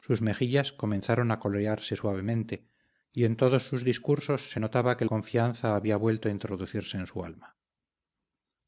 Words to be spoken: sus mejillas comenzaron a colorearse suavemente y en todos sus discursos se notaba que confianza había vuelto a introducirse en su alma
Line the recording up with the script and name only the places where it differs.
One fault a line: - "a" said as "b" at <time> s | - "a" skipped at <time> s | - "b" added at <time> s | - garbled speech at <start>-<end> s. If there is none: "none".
none